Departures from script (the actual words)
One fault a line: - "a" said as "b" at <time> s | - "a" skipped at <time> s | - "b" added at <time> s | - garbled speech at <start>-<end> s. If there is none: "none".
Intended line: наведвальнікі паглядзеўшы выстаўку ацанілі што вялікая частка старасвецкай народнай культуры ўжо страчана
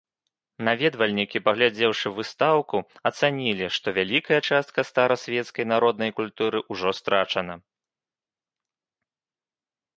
none